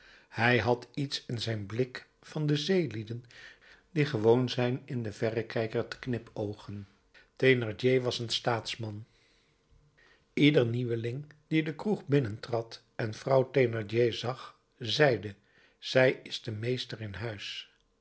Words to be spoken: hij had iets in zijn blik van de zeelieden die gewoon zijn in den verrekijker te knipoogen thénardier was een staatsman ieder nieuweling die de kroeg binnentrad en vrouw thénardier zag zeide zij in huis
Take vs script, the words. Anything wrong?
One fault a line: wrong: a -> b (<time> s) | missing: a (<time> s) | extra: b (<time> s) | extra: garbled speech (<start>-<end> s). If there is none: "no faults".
extra: is de meester (16.2 s)